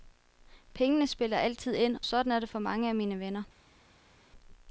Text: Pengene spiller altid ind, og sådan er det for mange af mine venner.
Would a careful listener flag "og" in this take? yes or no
yes